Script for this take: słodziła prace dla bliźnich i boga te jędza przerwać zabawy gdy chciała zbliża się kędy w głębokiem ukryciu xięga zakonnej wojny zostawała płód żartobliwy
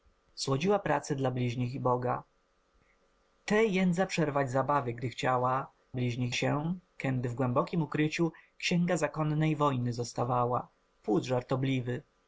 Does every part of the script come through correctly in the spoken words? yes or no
no